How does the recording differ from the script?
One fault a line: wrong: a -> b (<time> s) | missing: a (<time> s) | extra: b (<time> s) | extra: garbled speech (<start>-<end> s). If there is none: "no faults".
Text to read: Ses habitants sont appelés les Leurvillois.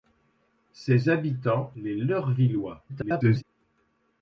missing: sont appelés (1.7 s)
extra: garbled speech (2.9-3.4 s)